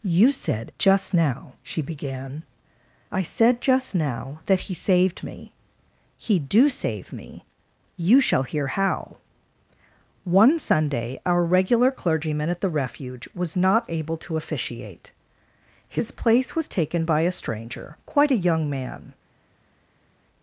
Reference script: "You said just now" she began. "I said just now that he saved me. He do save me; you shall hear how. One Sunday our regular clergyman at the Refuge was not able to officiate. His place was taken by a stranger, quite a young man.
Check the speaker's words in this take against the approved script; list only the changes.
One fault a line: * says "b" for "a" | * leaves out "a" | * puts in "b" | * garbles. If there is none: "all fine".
all fine